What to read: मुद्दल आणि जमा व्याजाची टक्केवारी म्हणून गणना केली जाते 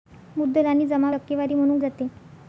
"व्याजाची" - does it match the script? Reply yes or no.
no